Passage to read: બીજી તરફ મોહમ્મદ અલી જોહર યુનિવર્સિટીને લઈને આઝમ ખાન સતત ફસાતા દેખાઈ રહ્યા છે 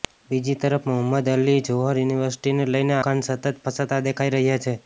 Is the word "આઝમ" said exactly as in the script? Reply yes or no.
no